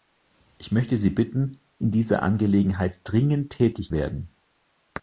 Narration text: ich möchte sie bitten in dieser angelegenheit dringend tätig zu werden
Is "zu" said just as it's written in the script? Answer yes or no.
no